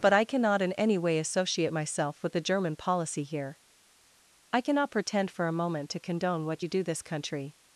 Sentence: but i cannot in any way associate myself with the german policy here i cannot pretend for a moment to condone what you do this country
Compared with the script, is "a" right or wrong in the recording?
right